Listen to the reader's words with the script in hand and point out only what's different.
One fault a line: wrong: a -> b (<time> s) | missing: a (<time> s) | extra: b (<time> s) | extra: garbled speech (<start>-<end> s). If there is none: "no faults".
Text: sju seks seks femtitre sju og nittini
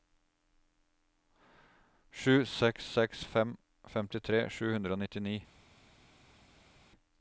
extra: fem (3.4 s)
extra: hundre (4.8 s)